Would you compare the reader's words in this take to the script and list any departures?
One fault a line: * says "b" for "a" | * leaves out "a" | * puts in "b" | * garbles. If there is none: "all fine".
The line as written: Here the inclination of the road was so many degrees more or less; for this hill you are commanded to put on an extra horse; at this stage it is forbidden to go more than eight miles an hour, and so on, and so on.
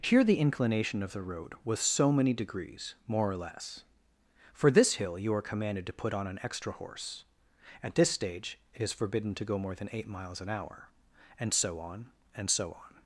all fine